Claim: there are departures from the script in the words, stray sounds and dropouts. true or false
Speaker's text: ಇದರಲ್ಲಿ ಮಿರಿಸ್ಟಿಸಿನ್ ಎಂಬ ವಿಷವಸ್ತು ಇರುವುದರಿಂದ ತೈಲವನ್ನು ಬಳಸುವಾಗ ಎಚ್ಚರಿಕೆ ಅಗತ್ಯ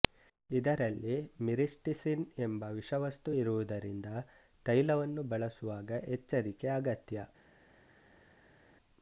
false